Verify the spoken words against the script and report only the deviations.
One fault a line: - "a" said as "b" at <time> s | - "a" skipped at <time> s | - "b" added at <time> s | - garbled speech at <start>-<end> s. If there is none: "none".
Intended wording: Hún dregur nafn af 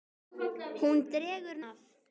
- "nafn" skipped at 1.6 s